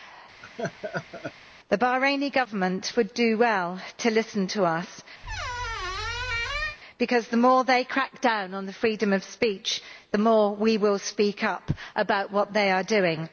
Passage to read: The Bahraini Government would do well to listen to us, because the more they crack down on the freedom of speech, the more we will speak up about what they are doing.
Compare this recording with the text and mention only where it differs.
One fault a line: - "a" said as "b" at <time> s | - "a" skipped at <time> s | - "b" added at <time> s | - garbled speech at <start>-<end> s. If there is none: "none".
none